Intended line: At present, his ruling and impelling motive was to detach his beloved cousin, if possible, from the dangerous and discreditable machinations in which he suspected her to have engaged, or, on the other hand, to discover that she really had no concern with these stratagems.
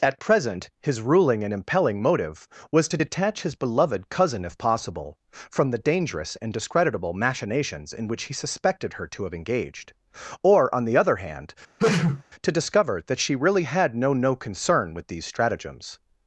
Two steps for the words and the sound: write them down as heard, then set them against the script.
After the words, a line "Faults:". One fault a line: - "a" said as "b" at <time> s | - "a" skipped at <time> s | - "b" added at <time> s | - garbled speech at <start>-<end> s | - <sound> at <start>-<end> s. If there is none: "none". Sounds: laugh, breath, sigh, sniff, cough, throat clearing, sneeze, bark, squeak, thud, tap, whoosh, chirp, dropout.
At present, his ruling and impelling motive was to detach his beloved cousin, if possible, from the dangerous and discreditable machinations in which he suspected her to have engaged, or, on the other hand, to discover that she really had no no concern with these stratagems.
Faults:
- sneeze at 11.8-12.2 s
- "no" added at 14.1 s